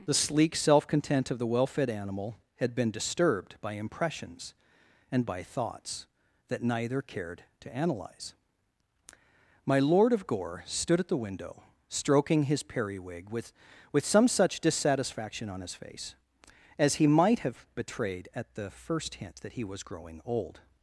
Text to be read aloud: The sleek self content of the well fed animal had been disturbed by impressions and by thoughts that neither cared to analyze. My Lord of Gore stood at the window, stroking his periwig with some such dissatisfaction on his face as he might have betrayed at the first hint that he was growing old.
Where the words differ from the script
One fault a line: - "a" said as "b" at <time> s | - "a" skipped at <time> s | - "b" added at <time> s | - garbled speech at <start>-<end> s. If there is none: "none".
- "with" added at 13.9 s